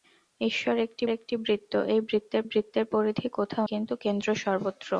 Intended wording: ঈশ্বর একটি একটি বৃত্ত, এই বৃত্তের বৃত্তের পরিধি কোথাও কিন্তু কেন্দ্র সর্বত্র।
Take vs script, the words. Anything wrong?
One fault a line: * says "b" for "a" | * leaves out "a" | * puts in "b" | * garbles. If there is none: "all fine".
all fine